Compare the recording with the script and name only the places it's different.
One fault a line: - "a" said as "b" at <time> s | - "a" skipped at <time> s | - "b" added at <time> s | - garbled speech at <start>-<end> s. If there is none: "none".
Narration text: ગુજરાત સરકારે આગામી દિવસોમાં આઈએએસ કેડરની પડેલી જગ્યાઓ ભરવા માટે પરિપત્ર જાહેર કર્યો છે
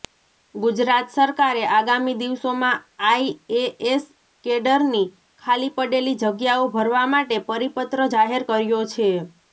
- "ખાલી" added at 5.4 s